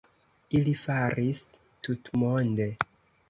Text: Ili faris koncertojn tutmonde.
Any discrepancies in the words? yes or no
yes